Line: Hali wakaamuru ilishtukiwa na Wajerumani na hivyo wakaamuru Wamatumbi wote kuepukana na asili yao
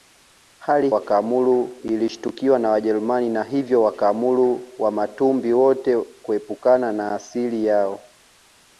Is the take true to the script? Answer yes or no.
yes